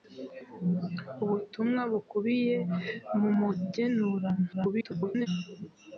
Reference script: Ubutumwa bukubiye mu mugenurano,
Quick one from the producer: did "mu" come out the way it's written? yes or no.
yes